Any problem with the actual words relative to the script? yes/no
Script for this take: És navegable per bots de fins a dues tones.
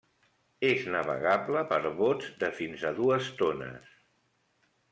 no